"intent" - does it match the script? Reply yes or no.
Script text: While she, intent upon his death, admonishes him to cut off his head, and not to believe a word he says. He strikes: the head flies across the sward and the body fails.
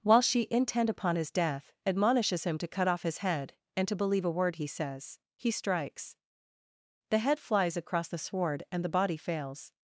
yes